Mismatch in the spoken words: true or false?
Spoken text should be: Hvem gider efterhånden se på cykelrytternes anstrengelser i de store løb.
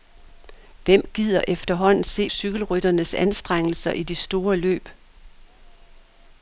true